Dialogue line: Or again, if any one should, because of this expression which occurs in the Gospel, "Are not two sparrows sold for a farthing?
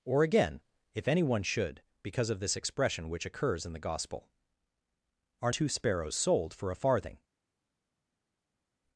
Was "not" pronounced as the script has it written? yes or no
no